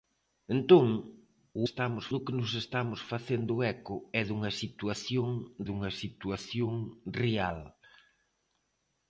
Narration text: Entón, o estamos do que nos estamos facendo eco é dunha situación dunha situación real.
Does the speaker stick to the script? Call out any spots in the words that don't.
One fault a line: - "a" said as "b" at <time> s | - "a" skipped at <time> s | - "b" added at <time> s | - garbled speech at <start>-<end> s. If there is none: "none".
none